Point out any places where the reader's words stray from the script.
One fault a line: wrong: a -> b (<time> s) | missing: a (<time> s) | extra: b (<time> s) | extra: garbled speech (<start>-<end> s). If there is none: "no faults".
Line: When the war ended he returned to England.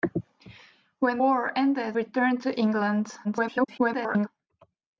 missing: the (1.2 s)
missing: he (2.0 s)
extra: garbled speech (3.2-4.3 s)